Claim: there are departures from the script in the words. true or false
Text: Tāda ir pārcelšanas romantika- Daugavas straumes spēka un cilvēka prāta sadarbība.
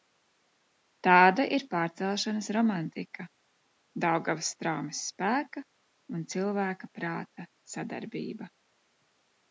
false